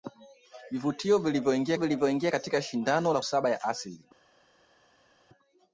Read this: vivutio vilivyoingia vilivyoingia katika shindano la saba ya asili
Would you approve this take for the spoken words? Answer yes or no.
yes